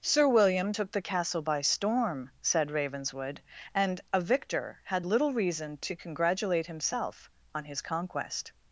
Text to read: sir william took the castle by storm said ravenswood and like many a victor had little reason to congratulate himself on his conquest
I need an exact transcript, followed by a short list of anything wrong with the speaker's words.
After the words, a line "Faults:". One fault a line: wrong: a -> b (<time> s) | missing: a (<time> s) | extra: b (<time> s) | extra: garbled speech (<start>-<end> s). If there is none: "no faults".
sir william took the castle by storm said ravenswood and a victor had little reason to congratulate himself on his conquest
Faults:
missing: like many (4.0 s)